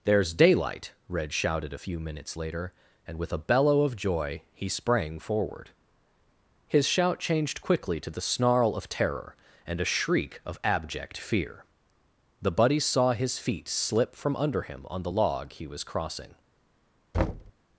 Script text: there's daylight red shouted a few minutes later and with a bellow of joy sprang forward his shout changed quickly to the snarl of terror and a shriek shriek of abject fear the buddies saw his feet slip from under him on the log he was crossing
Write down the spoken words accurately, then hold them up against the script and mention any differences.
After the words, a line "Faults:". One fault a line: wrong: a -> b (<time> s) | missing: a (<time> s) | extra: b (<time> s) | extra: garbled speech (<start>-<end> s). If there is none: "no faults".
there's daylight red shouted a few minutes later and with a bellow of joy he sprang forward his shout changed quickly to the snarl of terror and a shriek of abject fear the buddies saw his feet slip from under him on the log he was crossing
Faults:
extra: he (4.5 s)
missing: shriek (10.4 s)